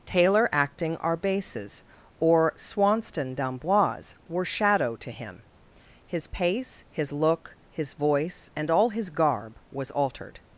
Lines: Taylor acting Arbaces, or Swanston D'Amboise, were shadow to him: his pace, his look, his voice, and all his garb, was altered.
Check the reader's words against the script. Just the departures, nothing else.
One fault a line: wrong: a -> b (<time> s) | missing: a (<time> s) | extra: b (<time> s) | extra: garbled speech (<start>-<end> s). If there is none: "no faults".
no faults